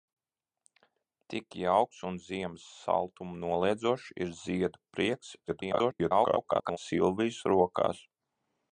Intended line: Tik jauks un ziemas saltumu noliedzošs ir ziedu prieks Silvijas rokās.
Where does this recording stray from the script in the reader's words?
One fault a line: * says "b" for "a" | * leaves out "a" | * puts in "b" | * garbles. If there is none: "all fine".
* garbles